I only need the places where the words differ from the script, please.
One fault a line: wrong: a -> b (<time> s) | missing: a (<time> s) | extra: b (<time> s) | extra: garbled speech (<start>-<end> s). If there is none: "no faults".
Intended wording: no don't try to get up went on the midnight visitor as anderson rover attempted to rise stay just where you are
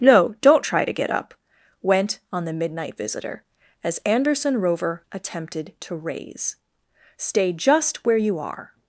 wrong: rise -> raise (5.9 s)